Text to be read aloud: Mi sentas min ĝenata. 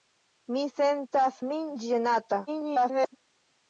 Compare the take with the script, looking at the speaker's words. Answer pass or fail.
fail